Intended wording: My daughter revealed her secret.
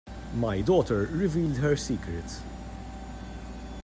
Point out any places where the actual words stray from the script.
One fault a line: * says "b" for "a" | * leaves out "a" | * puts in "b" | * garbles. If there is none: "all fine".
all fine